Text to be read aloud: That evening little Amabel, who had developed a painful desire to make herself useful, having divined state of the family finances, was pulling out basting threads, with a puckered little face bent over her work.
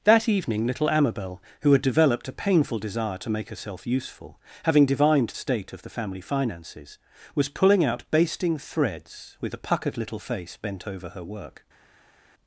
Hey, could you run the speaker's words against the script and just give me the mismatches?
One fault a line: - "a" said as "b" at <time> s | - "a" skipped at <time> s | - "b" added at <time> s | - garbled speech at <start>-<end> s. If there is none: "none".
none